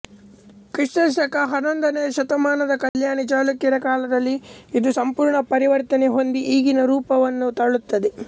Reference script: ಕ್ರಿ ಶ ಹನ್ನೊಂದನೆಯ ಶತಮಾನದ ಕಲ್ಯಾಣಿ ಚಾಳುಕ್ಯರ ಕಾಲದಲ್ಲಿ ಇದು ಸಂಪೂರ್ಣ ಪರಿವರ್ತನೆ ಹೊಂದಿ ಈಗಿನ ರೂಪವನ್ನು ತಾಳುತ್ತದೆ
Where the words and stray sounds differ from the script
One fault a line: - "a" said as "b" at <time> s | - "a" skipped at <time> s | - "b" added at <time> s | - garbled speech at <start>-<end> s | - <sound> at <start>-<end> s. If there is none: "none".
- dropout at 2.9-2.9 s